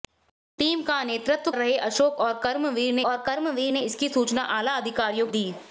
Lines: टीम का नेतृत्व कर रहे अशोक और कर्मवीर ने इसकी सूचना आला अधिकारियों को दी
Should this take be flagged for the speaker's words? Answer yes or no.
yes